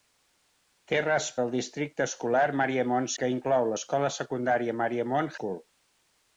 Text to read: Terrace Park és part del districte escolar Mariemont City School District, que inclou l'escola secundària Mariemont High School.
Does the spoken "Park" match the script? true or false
false